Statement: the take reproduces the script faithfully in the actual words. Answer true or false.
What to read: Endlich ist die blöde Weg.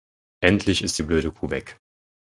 false